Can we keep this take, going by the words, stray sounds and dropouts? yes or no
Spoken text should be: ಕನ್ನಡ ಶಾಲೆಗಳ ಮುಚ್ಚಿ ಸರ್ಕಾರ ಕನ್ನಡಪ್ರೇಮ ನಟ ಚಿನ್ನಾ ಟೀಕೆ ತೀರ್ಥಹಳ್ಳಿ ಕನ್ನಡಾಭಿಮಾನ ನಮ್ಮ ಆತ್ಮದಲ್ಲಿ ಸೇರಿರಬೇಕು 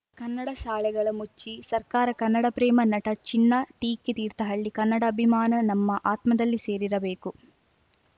yes